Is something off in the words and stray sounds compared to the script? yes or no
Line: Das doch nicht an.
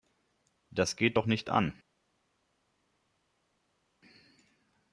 yes